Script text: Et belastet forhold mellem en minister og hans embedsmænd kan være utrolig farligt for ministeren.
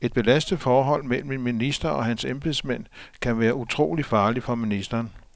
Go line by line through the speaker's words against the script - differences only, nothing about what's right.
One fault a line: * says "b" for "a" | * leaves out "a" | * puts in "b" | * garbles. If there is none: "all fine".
all fine